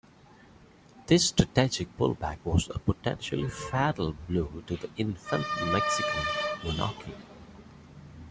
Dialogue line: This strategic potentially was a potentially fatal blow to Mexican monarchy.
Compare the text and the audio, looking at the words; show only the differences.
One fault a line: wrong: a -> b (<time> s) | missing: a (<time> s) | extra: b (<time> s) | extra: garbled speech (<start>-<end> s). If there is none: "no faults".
wrong: potentially -> pullback (2.0 s)
extra: the infant (4.8 s)